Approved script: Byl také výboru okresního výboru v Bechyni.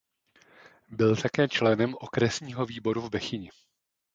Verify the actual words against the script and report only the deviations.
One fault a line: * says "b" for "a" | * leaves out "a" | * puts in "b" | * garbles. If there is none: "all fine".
* says "členem" for "výboru"